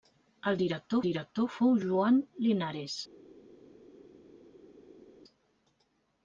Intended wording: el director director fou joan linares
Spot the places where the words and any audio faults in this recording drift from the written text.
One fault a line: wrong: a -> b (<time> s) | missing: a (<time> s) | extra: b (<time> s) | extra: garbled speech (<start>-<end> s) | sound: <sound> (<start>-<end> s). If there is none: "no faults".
no faults